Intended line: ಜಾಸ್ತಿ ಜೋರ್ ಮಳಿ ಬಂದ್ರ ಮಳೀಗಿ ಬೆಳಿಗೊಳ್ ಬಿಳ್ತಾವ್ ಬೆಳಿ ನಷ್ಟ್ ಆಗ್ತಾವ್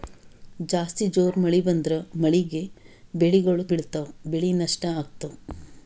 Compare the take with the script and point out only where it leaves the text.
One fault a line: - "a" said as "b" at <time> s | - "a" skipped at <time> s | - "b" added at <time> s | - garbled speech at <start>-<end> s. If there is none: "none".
none